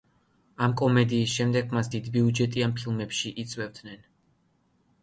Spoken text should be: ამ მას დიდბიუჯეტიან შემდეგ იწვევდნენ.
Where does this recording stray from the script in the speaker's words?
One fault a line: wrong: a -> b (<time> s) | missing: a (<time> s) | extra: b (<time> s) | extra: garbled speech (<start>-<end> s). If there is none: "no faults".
extra: კომედიის შემდეგ (0.8 s)
wrong: შემდეგ -> ფილმებში (2.8 s)